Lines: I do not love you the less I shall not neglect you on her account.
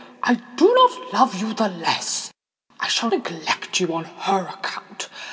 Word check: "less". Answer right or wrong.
right